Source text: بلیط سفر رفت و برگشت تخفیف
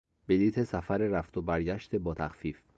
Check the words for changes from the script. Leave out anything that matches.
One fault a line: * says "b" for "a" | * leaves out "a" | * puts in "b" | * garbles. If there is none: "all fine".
* puts in "با"